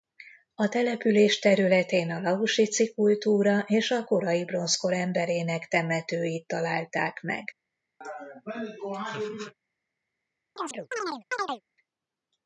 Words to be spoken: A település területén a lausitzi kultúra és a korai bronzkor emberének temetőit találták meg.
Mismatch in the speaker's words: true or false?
false